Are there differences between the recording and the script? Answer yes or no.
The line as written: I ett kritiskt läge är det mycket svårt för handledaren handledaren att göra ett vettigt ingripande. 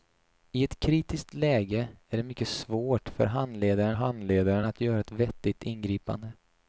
no